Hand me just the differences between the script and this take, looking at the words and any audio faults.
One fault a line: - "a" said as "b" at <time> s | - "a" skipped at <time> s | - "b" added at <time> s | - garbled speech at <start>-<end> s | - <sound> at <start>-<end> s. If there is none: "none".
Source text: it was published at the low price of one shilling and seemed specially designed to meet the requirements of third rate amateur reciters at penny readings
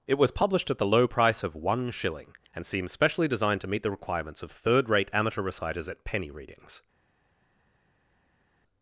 - "seemed" said as "seems" at 2.7 s